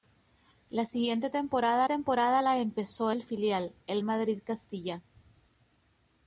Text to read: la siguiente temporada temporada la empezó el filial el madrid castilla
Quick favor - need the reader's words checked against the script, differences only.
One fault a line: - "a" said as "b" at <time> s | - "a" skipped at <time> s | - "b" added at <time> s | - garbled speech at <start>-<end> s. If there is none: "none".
none